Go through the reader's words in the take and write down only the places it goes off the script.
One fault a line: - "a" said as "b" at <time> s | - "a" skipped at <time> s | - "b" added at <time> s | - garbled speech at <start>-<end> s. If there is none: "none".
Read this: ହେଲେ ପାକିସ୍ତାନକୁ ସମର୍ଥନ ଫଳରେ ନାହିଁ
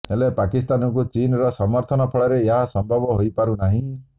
- "ଚୀନର" added at 1.1 s
- "ଏହା ସମ୍ଭବ ହୋଇପାରୁ" added at 2.4 s